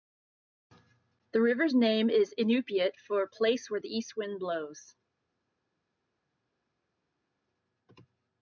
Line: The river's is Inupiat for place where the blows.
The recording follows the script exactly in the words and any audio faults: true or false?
false